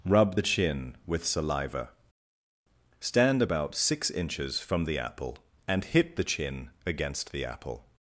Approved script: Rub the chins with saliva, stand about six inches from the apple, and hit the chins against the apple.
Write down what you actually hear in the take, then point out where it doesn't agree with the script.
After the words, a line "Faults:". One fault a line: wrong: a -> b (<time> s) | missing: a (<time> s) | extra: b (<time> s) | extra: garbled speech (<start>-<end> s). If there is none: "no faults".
Rub the chin with saliva, stand about six inches from the apple, and hit the chin against the apple.
Faults:
wrong: chins -> chin (0.4 s)
wrong: chins -> chin (6.2 s)